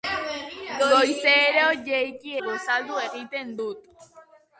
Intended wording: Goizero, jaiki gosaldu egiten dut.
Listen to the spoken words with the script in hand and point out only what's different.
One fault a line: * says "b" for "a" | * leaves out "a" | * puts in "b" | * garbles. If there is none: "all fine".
all fine